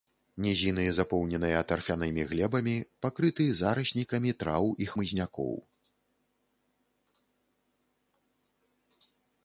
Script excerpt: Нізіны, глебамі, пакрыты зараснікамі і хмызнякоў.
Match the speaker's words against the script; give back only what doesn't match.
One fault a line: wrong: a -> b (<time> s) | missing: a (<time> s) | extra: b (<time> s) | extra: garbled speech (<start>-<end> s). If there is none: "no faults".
extra: запоўненыя тарфянымі (1.0 s)
extra: траў (4.4 s)